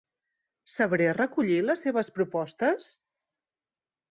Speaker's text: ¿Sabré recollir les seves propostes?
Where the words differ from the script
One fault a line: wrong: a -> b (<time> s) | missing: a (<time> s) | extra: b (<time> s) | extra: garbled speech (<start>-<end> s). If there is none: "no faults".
no faults